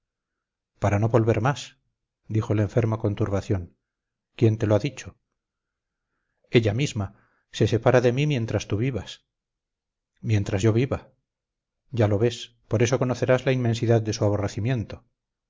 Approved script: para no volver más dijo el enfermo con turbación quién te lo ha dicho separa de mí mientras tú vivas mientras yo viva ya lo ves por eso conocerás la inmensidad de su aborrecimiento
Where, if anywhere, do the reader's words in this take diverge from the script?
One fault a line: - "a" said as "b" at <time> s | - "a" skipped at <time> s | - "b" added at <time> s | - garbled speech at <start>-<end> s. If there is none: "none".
- "ella misma se" added at 6.5 s